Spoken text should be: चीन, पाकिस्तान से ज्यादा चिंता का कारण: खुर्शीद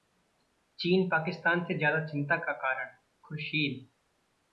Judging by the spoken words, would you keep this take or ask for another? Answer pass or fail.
pass